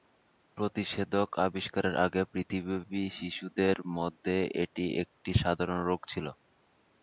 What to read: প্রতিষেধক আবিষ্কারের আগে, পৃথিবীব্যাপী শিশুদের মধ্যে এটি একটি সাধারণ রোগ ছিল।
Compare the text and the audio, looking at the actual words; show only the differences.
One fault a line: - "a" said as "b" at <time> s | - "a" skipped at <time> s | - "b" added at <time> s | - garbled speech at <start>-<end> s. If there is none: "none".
none